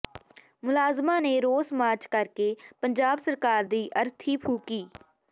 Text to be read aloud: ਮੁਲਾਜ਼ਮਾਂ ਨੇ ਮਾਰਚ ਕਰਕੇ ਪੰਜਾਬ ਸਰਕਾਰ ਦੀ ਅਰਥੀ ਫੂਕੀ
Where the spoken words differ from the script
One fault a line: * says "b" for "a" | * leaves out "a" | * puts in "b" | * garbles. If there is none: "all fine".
* puts in "ਰੋਸ"